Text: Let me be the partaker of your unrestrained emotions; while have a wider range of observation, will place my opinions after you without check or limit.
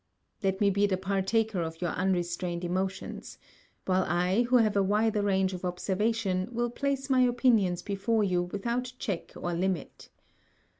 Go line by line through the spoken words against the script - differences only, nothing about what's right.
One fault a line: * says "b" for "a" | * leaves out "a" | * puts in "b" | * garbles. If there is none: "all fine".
* puts in "I who"
* says "before" for "after"